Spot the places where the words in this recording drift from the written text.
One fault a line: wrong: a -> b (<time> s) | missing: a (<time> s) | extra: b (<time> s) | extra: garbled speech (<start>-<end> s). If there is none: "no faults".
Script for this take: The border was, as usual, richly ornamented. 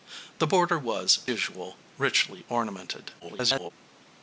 missing: as (1.3 s)
extra: garbled speech (3.2-3.7 s)